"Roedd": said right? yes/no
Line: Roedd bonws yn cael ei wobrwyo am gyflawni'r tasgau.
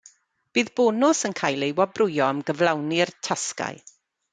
no